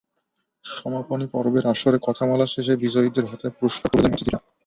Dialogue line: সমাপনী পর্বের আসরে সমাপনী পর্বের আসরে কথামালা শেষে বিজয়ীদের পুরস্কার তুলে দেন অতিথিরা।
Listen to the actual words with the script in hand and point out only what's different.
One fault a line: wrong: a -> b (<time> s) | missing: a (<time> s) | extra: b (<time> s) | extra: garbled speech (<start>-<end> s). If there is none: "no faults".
missing: সমাপনী পর্বের আসরে (2.0 s)
extra: হাতে (3.3 s)